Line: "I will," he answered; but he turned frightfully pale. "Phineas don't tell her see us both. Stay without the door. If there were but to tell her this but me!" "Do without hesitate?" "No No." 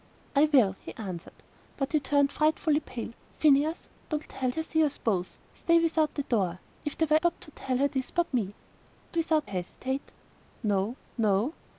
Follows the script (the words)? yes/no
yes